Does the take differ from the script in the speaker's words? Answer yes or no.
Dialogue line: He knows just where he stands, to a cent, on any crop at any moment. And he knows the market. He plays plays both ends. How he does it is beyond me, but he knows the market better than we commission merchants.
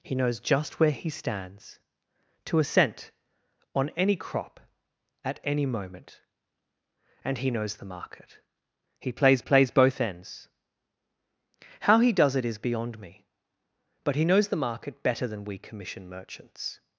no